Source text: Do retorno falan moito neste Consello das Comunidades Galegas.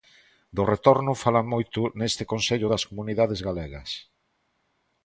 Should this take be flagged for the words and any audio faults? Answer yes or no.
no